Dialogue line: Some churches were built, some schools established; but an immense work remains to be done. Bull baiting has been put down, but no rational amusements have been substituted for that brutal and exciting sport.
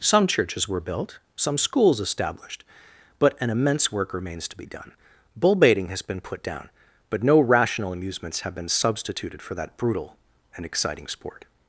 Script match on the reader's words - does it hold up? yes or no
yes